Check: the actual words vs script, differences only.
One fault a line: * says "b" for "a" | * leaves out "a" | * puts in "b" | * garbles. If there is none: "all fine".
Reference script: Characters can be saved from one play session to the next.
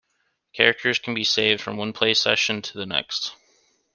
all fine